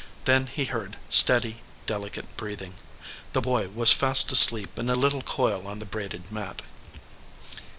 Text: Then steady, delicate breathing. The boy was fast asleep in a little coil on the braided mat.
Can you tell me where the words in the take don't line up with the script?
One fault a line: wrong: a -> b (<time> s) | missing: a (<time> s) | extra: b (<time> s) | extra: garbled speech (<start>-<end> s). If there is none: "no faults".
extra: he heard (0.5 s)